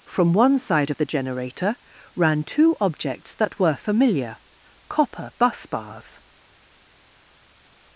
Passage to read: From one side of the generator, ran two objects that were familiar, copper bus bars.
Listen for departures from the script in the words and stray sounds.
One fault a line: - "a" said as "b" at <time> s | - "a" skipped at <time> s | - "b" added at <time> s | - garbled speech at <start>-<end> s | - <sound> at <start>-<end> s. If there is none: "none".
none